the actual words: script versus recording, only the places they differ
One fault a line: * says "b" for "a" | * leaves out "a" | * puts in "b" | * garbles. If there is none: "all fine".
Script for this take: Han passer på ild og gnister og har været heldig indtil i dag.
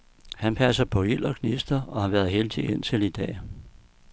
all fine